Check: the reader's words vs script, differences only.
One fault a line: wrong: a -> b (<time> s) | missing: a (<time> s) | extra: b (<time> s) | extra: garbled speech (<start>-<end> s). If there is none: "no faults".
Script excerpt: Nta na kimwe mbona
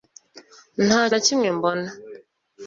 no faults